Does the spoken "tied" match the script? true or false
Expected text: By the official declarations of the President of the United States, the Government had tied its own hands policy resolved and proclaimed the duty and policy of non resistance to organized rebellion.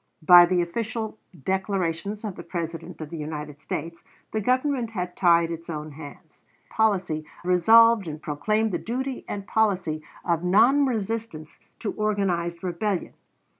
true